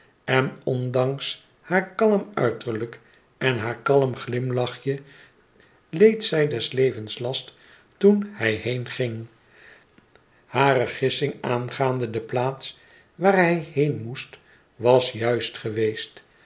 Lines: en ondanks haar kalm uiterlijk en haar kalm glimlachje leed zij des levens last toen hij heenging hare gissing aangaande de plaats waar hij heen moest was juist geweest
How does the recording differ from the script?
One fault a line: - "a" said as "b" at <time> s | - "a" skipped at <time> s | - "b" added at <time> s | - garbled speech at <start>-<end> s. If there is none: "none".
none